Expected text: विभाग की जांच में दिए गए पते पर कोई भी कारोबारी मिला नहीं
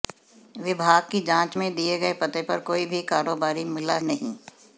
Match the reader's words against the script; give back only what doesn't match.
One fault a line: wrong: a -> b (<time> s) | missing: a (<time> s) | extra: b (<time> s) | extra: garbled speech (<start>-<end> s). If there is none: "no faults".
no faults